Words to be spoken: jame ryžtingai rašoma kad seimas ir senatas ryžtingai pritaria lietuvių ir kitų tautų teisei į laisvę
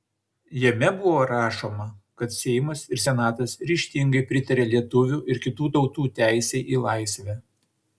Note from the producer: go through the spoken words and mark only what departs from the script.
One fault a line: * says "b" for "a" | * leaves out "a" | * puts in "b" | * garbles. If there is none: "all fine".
* says "buvo" for "ryžtingai"